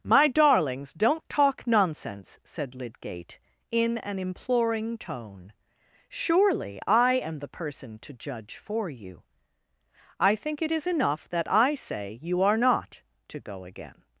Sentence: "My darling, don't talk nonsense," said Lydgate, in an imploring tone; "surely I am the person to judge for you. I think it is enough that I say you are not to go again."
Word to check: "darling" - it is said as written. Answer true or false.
false